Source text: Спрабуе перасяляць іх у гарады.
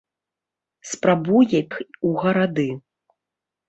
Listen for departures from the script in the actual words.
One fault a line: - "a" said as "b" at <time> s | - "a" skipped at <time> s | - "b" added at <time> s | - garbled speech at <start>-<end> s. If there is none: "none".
- "перасяляць" skipped at 1.6 s